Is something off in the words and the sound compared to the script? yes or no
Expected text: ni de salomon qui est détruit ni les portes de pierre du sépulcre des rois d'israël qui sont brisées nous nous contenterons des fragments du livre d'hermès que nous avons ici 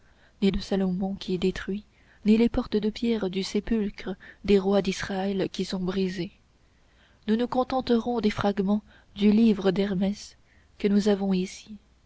no